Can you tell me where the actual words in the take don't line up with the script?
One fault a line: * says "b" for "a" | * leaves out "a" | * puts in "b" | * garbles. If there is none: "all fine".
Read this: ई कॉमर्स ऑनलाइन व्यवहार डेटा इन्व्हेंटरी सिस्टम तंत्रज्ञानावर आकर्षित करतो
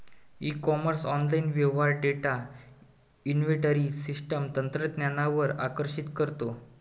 all fine